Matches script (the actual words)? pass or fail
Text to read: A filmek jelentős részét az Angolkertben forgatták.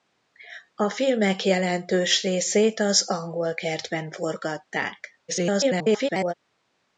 fail